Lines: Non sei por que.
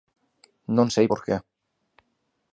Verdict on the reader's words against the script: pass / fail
pass